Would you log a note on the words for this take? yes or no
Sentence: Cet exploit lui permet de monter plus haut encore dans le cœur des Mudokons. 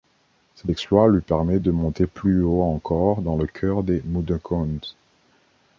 no